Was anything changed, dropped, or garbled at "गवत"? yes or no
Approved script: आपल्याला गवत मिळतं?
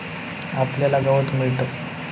no